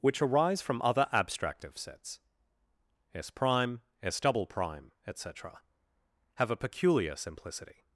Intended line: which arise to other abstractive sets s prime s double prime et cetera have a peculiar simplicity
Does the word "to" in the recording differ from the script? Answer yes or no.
yes